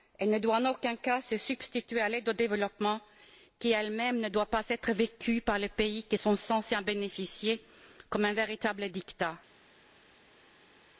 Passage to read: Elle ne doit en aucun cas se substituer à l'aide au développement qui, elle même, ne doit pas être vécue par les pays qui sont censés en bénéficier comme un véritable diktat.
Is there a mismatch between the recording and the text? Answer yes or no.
no